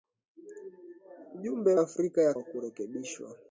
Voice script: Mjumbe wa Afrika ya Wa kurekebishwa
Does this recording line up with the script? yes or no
yes